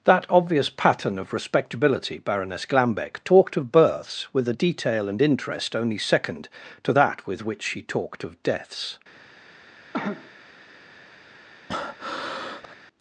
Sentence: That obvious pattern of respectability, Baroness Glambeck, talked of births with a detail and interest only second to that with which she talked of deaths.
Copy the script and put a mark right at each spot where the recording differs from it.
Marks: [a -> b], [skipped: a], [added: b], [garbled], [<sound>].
That obvious pattern of respectability, Baroness Glambeck, talked of births with a detail and interest only second to that with which she talked of deaths. [cough] [breath]